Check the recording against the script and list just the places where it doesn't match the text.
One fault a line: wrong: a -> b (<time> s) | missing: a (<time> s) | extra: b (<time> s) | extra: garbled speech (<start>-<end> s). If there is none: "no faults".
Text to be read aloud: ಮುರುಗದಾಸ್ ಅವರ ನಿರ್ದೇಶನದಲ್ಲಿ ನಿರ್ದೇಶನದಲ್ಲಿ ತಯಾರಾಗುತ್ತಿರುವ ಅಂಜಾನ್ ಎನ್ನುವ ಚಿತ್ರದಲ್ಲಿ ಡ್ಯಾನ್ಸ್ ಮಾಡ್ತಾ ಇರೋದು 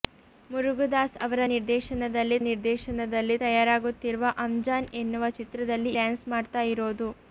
no faults